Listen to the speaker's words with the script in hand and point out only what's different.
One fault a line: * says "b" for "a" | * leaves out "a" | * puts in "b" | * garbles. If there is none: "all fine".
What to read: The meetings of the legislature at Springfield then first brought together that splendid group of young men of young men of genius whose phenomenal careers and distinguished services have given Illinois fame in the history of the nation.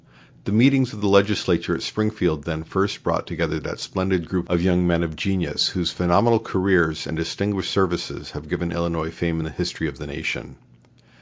* leaves out "young men of"